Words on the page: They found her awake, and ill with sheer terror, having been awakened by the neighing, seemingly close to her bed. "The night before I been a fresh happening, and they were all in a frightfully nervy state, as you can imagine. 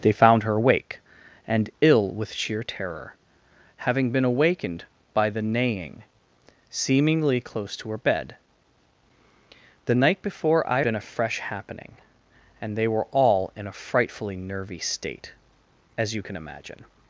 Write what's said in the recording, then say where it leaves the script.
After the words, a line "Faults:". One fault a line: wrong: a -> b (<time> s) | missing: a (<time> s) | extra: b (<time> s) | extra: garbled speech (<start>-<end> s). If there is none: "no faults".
They found her awake, and ill with sheer terror, having been awakened by the neighing, seemingly close to her bed. "The night before I been a fresh happening, and they were all in a frightfully nervy state, as you can imagine.
Faults:
no faults